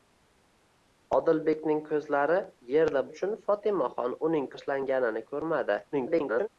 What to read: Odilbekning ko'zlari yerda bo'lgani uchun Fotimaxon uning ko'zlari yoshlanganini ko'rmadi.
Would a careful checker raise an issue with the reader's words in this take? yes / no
yes